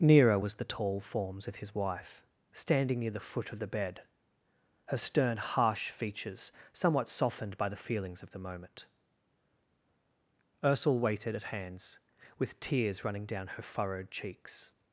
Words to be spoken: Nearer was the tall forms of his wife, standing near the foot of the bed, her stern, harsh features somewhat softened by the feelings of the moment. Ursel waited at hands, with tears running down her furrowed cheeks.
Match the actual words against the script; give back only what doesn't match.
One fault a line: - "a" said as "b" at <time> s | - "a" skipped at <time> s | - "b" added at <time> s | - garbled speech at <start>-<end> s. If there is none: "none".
none